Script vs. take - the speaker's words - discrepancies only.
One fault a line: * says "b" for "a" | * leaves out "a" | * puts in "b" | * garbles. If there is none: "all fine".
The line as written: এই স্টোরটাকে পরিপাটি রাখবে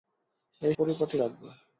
* leaves out "স্টোরটাকে"